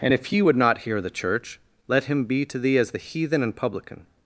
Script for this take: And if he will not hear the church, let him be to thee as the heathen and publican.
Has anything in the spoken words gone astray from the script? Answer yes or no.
yes